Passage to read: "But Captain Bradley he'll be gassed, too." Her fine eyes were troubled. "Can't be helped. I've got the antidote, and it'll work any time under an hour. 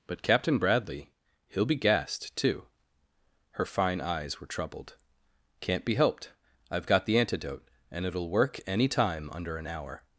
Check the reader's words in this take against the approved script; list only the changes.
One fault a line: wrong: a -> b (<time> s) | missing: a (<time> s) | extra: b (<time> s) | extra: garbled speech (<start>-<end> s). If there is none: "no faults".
no faults